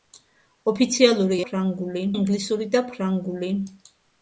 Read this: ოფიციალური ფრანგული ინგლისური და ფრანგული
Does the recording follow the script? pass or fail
pass